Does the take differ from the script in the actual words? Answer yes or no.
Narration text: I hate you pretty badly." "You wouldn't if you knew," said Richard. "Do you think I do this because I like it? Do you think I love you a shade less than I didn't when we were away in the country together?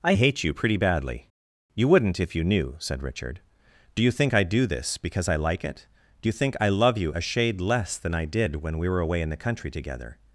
yes